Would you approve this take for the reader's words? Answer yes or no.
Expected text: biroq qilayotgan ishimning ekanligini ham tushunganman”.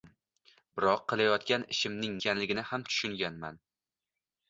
yes